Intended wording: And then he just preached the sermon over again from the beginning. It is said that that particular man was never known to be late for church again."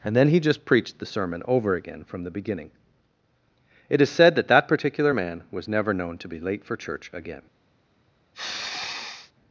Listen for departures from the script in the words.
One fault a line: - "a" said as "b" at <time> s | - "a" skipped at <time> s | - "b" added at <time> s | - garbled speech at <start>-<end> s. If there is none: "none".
none